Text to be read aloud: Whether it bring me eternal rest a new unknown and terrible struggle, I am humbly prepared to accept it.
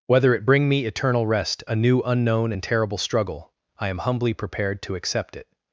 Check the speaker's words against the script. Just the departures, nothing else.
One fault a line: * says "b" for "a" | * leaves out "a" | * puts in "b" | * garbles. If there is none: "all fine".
all fine